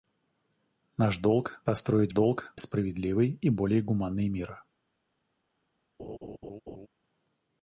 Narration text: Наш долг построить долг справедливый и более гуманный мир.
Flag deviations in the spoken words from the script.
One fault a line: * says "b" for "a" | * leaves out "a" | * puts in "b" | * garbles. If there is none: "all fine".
all fine